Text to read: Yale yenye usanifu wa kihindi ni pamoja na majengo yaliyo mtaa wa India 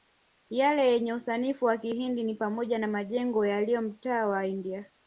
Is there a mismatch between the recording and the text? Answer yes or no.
no